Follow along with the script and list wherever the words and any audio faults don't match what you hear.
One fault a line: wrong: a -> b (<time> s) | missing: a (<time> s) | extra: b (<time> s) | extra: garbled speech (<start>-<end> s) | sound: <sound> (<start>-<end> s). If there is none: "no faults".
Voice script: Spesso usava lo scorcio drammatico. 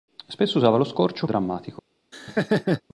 sound: laugh (2.1-2.8 s)